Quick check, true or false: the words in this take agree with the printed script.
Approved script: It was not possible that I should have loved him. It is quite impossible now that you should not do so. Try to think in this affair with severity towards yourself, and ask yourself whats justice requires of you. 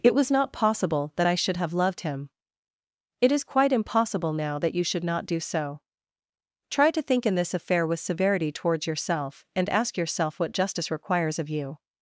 false